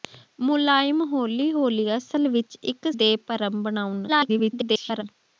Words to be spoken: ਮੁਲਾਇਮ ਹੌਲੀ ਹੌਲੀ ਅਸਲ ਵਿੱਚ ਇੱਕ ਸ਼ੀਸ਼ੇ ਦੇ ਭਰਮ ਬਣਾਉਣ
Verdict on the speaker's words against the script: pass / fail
fail